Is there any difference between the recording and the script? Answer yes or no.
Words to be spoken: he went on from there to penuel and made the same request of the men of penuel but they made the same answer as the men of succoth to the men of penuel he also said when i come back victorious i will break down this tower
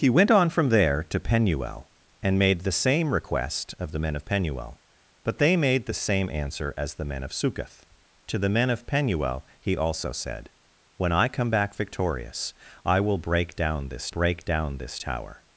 yes